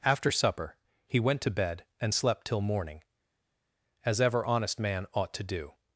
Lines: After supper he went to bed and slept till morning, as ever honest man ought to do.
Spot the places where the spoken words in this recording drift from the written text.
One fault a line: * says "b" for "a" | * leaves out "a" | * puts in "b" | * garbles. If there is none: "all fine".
all fine